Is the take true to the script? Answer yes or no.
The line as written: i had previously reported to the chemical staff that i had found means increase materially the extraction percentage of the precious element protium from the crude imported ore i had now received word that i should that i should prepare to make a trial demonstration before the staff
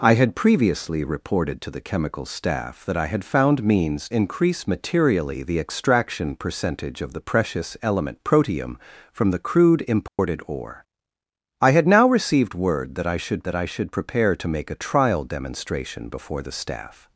yes